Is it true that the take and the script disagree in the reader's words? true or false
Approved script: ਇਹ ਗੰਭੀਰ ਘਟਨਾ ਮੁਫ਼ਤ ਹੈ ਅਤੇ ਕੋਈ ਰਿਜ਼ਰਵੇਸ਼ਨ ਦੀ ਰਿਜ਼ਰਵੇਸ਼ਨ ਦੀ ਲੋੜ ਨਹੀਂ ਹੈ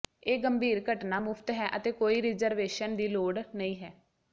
true